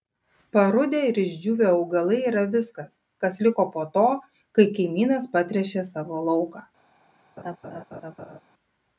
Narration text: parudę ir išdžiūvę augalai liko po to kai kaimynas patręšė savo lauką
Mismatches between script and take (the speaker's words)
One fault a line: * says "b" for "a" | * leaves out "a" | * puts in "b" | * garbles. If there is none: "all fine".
* puts in "yra viskas kas"